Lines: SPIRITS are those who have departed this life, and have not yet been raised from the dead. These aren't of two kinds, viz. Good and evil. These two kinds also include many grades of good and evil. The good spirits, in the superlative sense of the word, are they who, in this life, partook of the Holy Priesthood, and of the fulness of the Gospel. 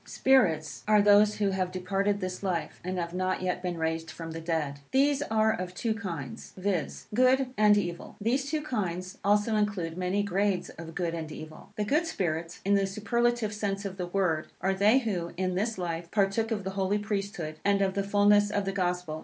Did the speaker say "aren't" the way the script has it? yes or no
no